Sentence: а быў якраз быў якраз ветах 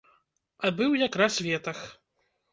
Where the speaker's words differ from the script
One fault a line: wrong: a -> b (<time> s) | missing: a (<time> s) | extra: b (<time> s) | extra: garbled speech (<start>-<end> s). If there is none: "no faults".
missing: быў якраз (1.4 s)